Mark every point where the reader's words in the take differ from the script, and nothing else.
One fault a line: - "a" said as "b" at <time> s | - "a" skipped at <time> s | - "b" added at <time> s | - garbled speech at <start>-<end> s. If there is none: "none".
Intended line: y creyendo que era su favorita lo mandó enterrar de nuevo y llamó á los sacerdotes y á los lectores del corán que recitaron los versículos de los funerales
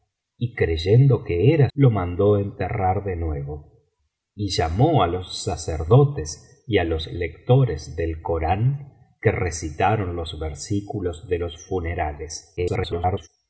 - "su favorita" skipped at 1.7 s
- garbled speech at 12.6-13.3 s